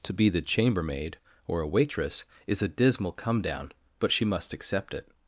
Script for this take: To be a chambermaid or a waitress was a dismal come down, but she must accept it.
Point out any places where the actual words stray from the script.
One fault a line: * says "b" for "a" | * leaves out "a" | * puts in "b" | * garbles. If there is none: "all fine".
* says "the" for "a"
* says "is" for "was"